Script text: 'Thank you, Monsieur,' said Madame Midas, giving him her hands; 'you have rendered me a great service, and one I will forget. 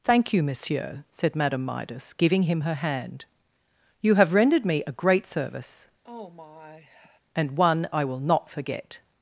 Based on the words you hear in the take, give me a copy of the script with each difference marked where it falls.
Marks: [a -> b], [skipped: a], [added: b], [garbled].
'Thank you, Monsieur,' said Madame Midas, giving him her [hands; -> hand] 'you have rendered me a great service, and one I will [added: not] forget.